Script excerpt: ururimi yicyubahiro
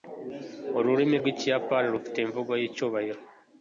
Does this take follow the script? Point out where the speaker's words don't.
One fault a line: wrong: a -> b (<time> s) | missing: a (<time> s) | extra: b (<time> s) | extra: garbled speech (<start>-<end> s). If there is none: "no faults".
extra: rwikiyapani rufite imvugo (1.2 s)